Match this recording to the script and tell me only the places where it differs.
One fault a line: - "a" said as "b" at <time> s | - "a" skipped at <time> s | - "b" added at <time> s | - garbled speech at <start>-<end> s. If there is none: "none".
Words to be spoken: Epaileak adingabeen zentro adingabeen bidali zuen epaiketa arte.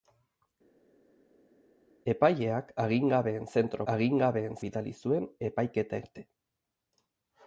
none